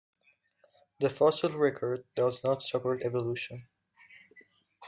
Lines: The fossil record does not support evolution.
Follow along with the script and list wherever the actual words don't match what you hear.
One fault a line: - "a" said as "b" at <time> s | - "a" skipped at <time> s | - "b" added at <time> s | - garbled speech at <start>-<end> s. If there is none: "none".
none